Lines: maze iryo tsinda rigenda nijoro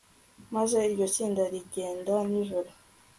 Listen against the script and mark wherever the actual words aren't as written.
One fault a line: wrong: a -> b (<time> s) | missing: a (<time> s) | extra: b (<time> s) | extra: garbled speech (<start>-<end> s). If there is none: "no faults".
no faults